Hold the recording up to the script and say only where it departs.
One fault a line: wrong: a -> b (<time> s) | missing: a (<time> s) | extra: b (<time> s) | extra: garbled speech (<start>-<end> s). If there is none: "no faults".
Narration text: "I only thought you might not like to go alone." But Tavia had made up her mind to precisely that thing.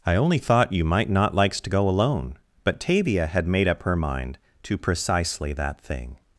wrong: like -> likes (1.4 s)